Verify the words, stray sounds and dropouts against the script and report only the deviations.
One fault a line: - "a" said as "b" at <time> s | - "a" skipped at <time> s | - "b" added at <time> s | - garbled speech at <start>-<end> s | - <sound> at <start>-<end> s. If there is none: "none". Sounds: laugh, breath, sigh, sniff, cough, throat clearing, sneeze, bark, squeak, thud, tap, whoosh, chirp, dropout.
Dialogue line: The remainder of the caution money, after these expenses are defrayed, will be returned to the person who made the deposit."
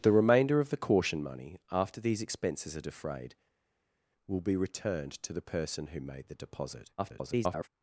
- garbled speech at 7.0-7.7 s